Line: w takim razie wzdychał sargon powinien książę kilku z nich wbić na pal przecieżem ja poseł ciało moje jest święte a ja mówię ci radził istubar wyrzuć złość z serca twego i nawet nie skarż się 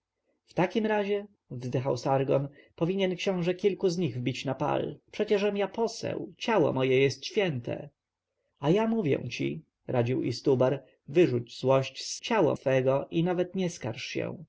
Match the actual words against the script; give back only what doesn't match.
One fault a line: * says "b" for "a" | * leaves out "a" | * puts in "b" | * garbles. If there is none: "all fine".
* says "ciało" for "serca"